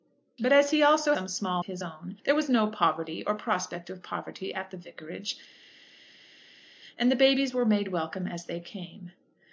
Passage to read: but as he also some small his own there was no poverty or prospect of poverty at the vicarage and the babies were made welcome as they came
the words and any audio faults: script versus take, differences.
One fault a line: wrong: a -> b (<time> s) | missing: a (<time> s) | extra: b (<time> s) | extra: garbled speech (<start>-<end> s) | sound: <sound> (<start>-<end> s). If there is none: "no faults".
no faults